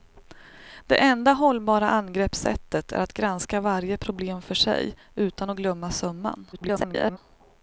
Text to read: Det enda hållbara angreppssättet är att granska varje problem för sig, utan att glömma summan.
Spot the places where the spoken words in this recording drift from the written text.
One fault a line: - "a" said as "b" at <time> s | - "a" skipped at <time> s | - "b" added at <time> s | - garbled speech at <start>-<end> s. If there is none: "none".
- garbled speech at 6.5-7.2 s